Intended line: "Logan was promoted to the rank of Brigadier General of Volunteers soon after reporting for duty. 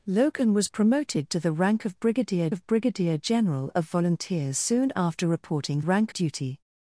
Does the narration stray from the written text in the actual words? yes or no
yes